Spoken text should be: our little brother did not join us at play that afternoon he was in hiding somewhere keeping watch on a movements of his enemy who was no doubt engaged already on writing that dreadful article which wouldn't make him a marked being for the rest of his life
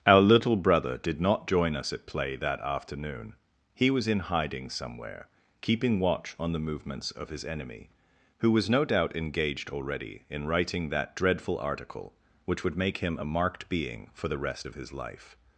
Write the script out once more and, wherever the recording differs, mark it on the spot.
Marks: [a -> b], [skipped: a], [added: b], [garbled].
our little brother did not join us at play that afternoon he was in hiding somewhere keeping watch on [a -> the] movements of his enemy who was no doubt engaged already [on -> in] writing that dreadful article which [wouldn't -> would] make him a marked being for the rest of his life